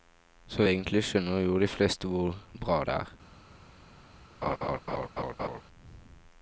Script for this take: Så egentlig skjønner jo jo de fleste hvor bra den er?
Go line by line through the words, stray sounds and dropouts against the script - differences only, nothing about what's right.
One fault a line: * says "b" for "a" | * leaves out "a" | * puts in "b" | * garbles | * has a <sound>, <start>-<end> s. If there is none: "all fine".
* leaves out "jo"
* says "det" for "den"
* has a laugh, 4.4-5.6 s